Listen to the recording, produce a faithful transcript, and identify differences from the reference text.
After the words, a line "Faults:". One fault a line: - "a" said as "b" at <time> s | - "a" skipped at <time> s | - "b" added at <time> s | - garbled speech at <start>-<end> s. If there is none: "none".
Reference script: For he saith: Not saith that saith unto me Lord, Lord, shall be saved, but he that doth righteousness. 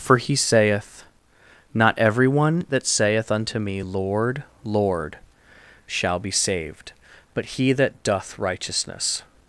For he saith: Not everyone that saith unto me Lord, Lord, shall be saved, but he that doth righteousness.
Faults:
- "saith" said as "everyone" at 2.0 s